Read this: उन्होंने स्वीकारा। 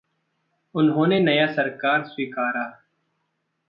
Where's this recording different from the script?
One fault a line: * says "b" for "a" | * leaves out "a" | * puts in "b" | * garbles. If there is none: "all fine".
* puts in "नया सरकार"